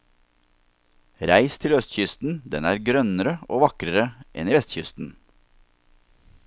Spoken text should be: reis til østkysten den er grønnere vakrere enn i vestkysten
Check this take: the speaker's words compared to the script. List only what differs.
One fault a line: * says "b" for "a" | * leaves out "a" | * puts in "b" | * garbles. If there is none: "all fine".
* puts in "og"